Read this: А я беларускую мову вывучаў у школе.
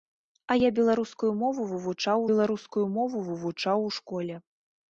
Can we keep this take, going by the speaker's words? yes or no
no